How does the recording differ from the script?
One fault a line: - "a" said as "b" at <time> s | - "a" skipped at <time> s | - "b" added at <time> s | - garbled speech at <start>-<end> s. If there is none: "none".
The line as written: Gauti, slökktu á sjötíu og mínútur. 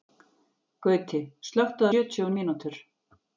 none